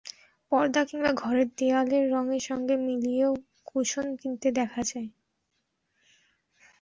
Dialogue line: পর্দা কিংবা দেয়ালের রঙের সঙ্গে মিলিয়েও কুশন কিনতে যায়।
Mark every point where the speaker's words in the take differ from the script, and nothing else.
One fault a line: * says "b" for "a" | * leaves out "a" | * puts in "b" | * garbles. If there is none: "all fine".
* puts in "ঘরের"
* puts in "দেখা"